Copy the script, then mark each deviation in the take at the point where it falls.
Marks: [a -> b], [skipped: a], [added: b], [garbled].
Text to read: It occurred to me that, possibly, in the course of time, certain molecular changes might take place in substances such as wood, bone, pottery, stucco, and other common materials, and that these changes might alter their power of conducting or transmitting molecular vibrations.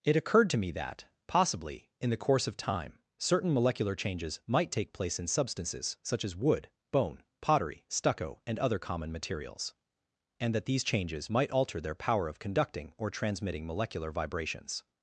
It occurred to me that, possibly, in the course of time, certain molecular changes might take place in substances such as wood, bone, pottery, stucco, and other common materials, and that these changes might alter their power of conducting or transmitting molecular vibrations.